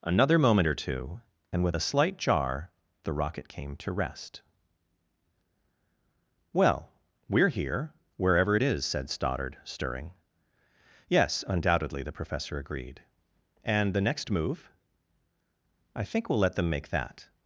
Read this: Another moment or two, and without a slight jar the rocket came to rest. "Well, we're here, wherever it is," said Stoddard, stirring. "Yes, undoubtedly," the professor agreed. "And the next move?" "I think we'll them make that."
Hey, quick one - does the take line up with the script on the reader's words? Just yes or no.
no